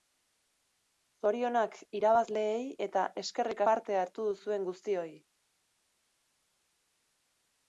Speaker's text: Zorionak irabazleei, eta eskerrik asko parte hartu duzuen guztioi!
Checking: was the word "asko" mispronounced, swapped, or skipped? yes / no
yes